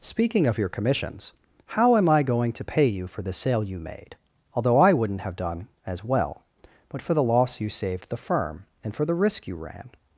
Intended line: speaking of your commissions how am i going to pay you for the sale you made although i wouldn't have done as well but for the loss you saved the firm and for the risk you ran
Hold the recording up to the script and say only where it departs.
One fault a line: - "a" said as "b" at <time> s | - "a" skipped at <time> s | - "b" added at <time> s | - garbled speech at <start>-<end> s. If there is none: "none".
none